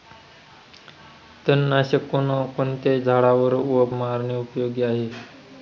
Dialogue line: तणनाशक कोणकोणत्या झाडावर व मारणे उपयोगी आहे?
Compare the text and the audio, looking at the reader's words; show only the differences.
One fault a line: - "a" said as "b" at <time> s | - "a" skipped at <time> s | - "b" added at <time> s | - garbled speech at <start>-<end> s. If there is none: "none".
none